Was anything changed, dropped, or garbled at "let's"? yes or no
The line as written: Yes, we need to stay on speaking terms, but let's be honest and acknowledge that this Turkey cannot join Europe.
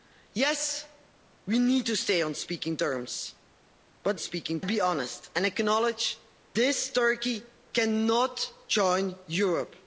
yes